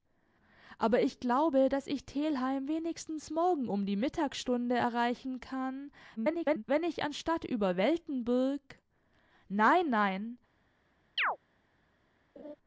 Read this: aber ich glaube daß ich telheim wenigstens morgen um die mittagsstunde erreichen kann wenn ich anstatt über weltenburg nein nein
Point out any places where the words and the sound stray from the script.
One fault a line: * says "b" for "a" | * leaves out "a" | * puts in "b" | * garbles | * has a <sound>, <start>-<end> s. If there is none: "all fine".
* garbles
* has a chirp, 11.2-11.4 s
* has a laugh, 12.4-12.6 s